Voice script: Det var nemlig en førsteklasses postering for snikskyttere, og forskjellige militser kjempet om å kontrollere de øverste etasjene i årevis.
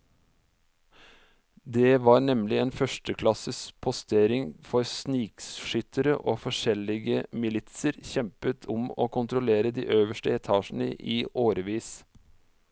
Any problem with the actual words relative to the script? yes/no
no